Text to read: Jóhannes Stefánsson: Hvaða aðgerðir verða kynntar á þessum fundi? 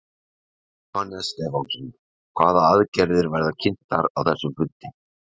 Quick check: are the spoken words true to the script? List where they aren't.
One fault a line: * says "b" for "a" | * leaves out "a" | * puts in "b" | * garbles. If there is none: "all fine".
all fine